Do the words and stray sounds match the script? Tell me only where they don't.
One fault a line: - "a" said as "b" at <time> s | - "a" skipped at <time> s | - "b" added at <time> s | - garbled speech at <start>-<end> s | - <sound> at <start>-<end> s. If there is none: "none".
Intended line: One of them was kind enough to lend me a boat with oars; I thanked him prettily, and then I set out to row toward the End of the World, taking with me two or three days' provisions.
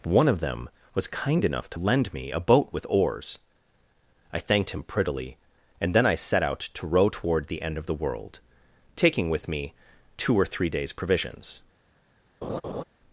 - laugh at 12.4-12.8 s